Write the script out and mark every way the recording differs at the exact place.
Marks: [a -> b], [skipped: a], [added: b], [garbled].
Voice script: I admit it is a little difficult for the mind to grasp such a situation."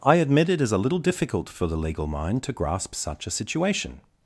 I admit it is a little difficult for the [added: legal] mind to grasp such a situation."